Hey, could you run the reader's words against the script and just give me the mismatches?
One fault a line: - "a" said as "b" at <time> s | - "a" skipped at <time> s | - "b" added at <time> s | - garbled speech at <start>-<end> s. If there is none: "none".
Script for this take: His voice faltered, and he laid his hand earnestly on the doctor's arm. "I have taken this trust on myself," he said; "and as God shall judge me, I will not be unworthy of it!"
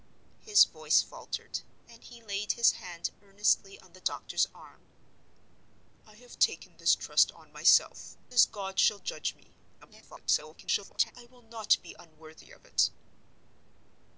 - "he said and" skipped at 8.2 s
- garbled speech at 9.8-11.1 s